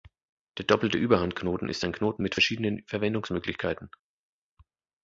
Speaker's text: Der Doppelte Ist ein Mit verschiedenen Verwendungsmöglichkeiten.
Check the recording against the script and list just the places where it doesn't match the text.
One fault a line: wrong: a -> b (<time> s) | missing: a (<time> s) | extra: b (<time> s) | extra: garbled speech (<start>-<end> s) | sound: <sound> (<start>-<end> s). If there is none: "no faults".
extra: Überhandknoten (1.0 s)
extra: Knoten (1.9 s)